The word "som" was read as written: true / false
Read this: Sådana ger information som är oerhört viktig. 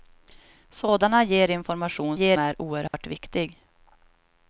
false